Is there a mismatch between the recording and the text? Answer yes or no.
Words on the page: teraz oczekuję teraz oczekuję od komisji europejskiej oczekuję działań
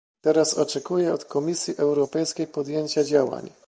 yes